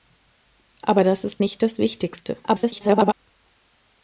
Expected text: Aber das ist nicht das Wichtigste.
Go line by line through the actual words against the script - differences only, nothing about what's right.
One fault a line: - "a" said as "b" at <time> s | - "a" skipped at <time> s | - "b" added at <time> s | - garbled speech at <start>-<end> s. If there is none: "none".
- garbled speech at 2.4-3.1 s